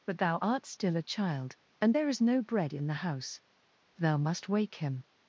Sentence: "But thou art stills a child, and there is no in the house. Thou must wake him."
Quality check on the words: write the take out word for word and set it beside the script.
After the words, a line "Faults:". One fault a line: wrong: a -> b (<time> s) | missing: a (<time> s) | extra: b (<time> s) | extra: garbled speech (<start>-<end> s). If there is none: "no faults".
"But thou art still a child, and there is no bread in the house. Thou must wake him."
Faults:
wrong: stills -> still (0.6 s)
extra: bread (2.4 s)